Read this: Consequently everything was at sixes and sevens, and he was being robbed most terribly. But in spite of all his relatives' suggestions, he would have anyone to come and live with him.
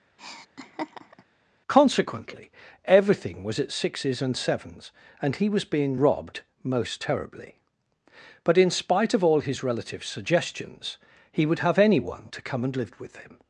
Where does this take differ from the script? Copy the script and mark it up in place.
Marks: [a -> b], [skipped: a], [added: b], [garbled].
Consequently everything was at sixes and sevens, and he was being robbed most terribly. But in spite of all his relatives' suggestions, he would have anyone to come and live with him.